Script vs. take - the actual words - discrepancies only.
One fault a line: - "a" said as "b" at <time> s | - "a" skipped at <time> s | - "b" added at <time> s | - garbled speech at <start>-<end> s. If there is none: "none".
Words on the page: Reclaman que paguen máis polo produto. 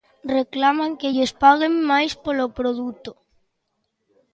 - "lles" added at 1.1 s